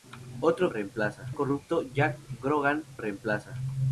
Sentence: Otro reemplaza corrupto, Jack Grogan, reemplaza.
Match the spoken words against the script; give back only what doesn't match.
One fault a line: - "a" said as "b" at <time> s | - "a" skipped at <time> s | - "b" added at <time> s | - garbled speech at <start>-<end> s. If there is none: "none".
none